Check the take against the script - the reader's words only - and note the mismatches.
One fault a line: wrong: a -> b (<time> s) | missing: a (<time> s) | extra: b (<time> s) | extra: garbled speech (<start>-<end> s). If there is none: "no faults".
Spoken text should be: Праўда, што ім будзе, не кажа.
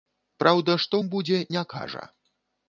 no faults